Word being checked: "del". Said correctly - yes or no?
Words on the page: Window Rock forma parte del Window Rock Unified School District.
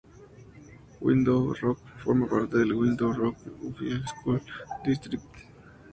yes